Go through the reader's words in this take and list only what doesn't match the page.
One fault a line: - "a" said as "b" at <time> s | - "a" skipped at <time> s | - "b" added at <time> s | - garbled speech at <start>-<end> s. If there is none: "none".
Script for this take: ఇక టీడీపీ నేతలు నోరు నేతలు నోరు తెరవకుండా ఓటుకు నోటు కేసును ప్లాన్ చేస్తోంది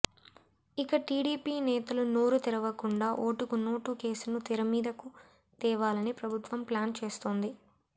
- "నేతలు నోరు" skipped at 2.4 s
- "తెరమీదకు తేవాలని ప్రభుత్వం" added at 4.5 s